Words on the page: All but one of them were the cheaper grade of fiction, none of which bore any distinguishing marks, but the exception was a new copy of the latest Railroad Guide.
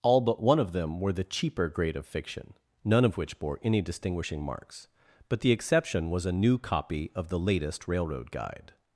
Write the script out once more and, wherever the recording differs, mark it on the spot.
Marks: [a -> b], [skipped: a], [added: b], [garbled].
All but one of them were the cheaper grade of fiction, none of which bore any distinguishing marks, but the exception was a new copy of the latest Railroad Guide.